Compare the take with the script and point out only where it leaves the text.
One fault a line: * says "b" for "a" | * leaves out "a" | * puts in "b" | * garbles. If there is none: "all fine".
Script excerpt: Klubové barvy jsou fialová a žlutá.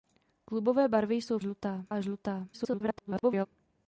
* says "žlutá" for "fialová"
* garbles